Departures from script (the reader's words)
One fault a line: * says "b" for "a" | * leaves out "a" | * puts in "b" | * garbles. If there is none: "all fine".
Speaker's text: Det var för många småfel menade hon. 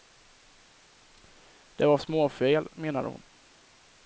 * leaves out "för många"